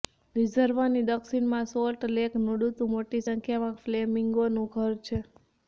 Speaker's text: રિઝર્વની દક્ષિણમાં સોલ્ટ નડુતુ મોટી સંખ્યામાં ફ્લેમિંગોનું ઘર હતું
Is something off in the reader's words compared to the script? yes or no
yes